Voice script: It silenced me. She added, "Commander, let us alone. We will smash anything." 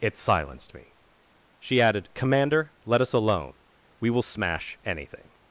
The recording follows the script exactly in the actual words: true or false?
true